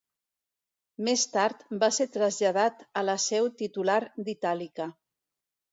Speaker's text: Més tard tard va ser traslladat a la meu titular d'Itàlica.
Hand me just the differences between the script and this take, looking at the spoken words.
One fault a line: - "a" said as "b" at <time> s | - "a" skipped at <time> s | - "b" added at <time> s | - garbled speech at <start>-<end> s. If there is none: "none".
- "tard" skipped at 1.6 s
- "meu" said as "seu" at 3.3 s